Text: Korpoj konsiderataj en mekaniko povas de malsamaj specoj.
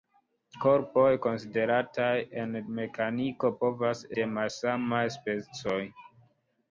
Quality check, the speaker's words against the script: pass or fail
pass